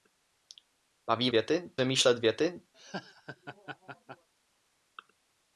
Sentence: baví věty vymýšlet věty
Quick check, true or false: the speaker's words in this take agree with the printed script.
true